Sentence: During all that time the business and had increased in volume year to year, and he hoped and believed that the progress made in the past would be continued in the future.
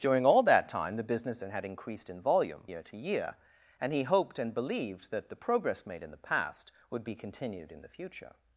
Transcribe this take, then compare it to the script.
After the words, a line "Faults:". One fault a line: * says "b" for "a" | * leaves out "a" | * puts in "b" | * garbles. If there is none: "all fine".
During all that time the business and had increased in volume year to year, and he hoped and believed that the progress made in the past would be continued in the future.
Faults:
all fine